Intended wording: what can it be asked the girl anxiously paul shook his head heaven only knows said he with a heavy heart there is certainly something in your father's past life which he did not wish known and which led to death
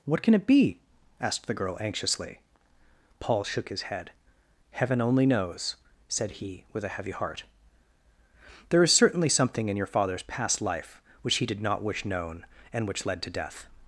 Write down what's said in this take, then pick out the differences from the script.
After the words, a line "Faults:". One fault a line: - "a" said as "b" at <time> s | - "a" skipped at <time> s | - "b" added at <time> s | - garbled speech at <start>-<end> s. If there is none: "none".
what can it be asked the girl anxiously paul shook his head heaven only knows said he with a heavy heart there is certainly something in your father's past life which he did not wish known and which led to death
Faults:
none